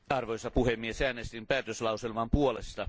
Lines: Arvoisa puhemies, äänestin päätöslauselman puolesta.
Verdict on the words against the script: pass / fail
pass